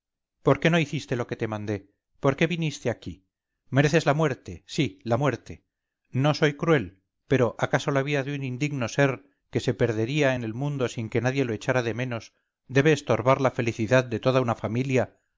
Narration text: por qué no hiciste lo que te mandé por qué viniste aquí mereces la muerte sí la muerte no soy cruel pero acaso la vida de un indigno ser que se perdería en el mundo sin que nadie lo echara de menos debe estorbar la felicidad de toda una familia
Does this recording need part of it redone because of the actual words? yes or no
no